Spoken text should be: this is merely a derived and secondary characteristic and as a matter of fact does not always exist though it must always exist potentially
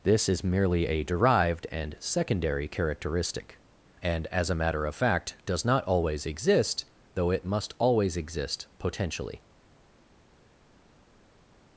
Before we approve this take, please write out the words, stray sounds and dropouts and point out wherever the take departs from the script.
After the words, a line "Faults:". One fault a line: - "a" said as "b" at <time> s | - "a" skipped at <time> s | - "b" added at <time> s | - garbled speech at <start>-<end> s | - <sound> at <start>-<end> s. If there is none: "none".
this is merely a derived and secondary characteristic and as a matter of fact does not always exist though it must always exist potentially
Faults:
none